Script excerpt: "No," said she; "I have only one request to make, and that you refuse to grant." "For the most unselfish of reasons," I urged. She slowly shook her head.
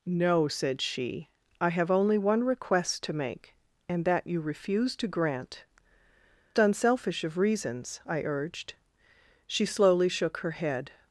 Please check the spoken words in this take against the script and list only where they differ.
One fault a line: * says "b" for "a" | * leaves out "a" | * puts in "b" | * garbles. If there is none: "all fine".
* leaves out "For the most"